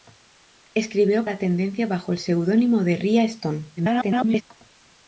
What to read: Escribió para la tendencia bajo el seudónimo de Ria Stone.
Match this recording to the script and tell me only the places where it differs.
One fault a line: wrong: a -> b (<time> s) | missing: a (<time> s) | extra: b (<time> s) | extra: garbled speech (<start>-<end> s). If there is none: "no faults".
missing: para (1.3 s)
extra: garbled speech (3.8-4.4 s)